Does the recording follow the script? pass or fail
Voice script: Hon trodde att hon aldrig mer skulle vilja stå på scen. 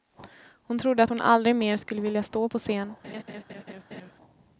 pass